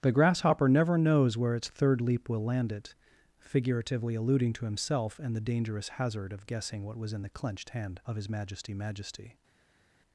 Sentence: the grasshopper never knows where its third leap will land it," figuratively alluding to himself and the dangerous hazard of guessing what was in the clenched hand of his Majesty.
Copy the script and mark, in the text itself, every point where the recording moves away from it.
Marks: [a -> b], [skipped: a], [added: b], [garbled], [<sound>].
the grasshopper never knows where its third leap will land it," figuratively alluding to himself and the dangerous hazard of guessing what was in the clenched hand of his Majesty. [added: Majesty]